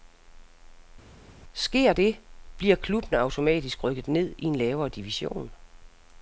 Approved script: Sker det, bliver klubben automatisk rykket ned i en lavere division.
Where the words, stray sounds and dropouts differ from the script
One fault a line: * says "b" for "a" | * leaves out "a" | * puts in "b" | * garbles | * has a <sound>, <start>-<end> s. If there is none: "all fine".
all fine